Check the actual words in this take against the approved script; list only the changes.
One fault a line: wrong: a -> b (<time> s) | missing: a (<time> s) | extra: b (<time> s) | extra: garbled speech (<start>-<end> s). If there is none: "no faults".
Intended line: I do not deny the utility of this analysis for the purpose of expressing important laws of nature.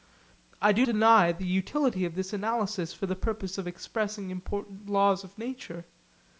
missing: not (0.9 s)